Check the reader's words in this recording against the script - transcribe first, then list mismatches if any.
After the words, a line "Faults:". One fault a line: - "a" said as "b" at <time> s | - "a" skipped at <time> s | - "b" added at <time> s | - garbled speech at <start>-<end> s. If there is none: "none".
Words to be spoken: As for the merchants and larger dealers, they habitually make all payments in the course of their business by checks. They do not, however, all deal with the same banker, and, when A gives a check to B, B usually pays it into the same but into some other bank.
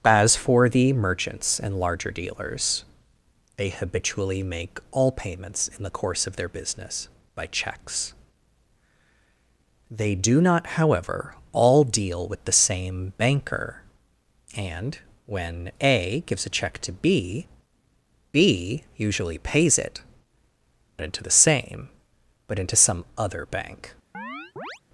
As for the merchants and larger dealers, they habitually make all payments in the course of their business by checks. They do not, however, all deal with the same banker, and, when A gives a check to B, B usually pays it into the same but into some other bank.
Faults:
none